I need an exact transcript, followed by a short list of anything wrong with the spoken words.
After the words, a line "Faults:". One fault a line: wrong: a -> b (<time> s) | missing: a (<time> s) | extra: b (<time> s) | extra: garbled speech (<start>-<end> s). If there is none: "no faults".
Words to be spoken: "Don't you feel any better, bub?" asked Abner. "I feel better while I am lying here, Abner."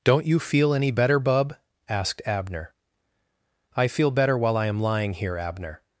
"Don't you feel any better, bub?" asked Abner. "I feel better while I am lying here, Abner."
Faults:
no faults